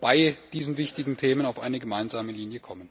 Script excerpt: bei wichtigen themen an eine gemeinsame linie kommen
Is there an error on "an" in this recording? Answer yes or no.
yes